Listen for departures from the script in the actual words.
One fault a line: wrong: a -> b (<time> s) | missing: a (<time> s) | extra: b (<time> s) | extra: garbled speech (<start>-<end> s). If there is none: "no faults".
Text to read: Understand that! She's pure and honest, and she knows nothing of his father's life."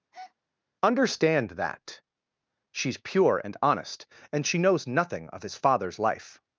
no faults